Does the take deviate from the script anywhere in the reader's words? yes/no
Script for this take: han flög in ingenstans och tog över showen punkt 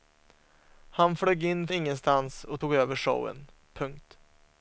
no